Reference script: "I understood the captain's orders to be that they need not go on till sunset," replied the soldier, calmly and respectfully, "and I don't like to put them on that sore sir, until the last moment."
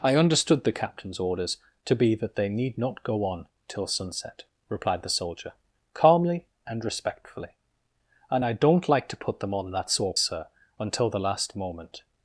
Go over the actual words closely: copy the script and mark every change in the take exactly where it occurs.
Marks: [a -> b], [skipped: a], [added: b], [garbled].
"I understood the captain's orders to be that they need not go on till sunset," replied the soldier, calmly and respectfully, "and I don't like to put them on that sore sir, until the last moment."